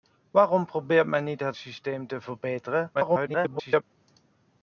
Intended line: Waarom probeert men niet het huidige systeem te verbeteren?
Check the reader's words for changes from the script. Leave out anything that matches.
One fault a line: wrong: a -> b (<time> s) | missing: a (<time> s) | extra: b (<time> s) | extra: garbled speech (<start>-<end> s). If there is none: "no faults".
missing: huidige (1.6 s)
extra: garbled speech (2.9-3.8 s)